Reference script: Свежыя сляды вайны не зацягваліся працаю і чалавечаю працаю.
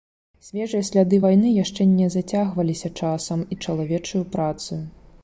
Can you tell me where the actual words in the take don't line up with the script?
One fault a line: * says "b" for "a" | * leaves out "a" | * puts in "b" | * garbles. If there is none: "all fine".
* puts in "яшчэ"
* says "часам" for "працаю"